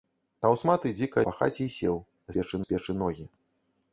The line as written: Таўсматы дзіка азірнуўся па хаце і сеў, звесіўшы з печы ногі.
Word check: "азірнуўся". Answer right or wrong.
wrong